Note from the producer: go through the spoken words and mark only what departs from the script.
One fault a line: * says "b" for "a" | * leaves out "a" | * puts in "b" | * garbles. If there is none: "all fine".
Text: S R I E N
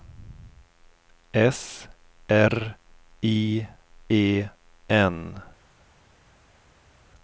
all fine